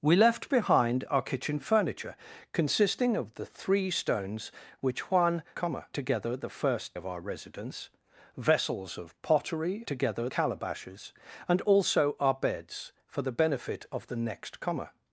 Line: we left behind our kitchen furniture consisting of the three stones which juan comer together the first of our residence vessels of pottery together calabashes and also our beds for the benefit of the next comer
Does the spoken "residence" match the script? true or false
true